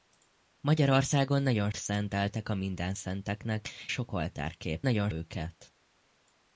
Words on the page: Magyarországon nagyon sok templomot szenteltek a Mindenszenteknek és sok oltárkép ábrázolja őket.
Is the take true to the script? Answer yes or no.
no